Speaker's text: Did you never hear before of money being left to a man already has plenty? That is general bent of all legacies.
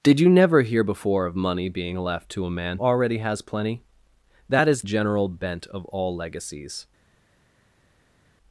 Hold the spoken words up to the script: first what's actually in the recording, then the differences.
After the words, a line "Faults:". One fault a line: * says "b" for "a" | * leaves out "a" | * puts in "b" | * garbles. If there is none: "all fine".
Did you never hear before of money being left to a man already has plenty? That is general bent of all legacies.
Faults:
all fine